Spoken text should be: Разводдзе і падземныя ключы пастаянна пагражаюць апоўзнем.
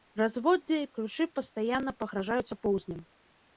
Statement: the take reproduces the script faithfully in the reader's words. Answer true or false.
false